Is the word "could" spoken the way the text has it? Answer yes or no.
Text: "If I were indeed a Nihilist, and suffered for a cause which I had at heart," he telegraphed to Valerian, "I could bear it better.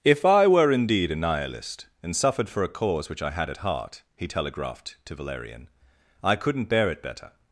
no